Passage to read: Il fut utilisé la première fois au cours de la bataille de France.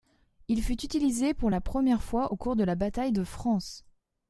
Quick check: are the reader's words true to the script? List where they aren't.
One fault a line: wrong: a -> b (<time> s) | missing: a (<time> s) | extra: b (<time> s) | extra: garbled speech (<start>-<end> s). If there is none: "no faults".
extra: pour (1.3 s)